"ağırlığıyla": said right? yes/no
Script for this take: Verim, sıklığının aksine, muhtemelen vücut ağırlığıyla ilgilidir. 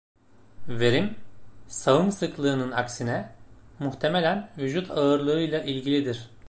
yes